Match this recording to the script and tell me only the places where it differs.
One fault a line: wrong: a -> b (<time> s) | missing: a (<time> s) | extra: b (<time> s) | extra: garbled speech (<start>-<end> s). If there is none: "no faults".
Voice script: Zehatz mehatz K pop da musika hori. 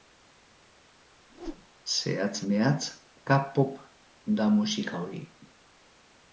no faults